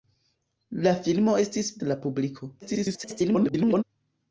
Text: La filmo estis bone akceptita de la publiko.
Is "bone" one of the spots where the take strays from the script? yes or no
yes